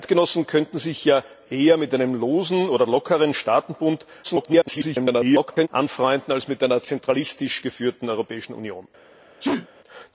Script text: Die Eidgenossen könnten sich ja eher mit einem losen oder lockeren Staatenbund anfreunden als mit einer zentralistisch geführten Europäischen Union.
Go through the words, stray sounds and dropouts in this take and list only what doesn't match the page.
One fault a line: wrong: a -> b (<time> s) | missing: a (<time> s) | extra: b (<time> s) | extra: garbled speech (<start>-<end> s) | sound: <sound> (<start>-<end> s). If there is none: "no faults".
extra: garbled speech (4.2-5.7 s)
sound: sneeze (9.4-9.7 s)